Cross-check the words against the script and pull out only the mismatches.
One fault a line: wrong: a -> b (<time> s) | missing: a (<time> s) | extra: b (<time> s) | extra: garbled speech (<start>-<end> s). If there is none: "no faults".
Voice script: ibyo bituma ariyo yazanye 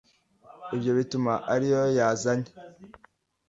no faults